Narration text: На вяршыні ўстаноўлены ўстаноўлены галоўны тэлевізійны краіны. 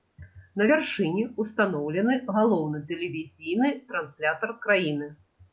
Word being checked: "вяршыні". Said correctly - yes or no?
yes